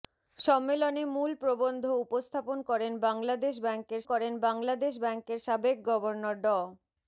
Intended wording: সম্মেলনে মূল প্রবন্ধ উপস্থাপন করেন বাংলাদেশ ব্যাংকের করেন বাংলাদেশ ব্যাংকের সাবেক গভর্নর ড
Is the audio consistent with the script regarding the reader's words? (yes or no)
yes